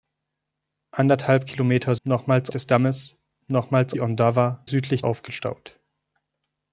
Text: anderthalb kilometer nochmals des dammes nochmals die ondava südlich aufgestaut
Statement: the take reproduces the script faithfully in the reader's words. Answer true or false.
true